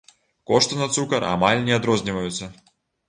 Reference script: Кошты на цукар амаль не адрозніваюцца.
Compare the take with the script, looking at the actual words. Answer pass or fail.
pass